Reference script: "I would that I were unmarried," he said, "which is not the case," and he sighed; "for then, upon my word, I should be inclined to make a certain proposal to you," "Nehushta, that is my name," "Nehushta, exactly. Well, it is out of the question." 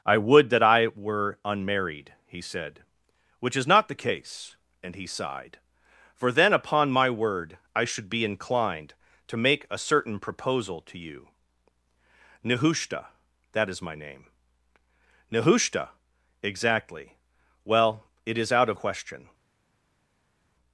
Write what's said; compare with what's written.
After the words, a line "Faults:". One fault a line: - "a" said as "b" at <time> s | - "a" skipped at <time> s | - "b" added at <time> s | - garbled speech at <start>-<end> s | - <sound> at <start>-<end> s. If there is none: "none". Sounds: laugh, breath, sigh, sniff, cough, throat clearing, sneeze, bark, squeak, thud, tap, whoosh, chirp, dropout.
"I would that I were unmarried," he said, "which is not the case," and he sighed; "for then, upon my word, I should be inclined to make a certain proposal to you," "Nehushta, that is my name," "Nehushta, exactly. Well, it is out of question."
Faults:
- "the" skipped at 18.8 s